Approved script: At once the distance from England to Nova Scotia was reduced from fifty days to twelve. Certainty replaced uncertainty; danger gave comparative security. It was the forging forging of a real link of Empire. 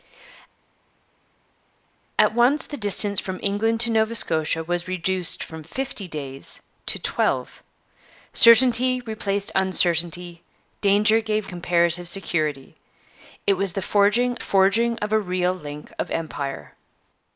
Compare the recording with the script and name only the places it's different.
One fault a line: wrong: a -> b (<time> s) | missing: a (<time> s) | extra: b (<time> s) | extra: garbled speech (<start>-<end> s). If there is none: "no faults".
no faults